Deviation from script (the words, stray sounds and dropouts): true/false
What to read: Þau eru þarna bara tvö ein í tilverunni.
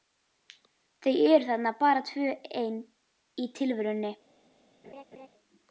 true